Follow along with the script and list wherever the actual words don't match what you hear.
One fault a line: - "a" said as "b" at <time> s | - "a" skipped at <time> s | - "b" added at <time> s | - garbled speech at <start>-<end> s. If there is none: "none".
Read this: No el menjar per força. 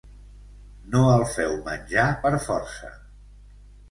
- "feu" added at 1.3 s